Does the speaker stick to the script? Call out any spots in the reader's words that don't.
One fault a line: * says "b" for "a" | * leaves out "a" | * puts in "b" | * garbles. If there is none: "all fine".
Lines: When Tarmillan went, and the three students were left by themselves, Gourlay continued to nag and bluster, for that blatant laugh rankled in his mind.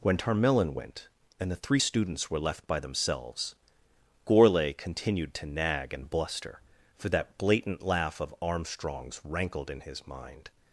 * puts in "of Armstrong's"